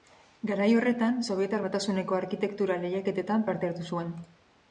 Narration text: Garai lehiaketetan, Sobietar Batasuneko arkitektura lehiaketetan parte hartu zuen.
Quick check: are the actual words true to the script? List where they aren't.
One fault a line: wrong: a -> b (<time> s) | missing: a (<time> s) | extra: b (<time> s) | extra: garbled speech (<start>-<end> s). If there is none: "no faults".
wrong: lehiaketetan -> horretan (0.8 s)